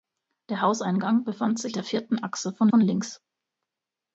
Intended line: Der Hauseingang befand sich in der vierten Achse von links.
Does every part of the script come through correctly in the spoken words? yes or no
no